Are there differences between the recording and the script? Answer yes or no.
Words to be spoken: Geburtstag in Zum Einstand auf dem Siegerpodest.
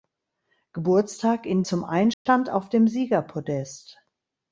no